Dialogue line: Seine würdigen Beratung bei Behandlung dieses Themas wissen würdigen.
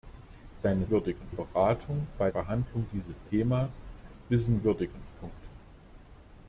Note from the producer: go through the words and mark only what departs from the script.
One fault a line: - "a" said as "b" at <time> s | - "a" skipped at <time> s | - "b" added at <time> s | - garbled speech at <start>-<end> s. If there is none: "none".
none